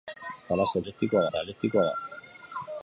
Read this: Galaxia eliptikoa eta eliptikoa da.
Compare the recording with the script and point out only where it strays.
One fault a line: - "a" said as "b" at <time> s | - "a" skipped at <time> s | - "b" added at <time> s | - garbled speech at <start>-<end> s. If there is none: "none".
none